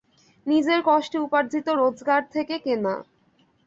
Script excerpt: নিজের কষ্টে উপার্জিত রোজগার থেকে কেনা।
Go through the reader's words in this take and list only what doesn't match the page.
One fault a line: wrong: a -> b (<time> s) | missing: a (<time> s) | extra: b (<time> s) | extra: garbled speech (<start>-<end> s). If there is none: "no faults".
no faults